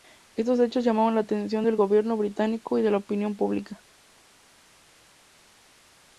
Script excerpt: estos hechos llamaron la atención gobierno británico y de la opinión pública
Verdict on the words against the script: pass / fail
fail